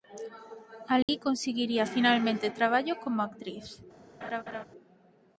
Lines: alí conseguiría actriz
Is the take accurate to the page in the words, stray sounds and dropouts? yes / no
no